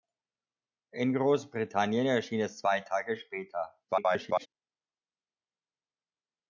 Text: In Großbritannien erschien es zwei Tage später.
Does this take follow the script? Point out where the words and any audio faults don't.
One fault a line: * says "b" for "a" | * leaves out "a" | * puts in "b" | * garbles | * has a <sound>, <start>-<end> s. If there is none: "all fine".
* garbles